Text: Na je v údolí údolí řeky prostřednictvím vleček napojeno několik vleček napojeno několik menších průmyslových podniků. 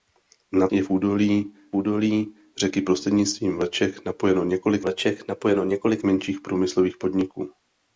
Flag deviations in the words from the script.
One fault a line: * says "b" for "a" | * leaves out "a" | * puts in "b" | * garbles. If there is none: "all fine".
all fine